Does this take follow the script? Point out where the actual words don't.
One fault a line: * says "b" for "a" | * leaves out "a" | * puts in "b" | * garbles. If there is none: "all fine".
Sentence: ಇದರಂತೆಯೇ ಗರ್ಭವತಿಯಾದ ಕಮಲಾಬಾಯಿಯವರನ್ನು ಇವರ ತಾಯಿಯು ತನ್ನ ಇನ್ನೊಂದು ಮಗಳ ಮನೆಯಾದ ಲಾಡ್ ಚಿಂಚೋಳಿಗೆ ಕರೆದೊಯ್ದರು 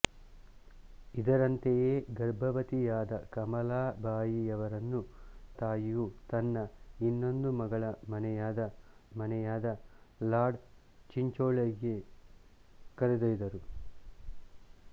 * leaves out "ಇವರ"
* puts in "ಮನೆಯಾದ"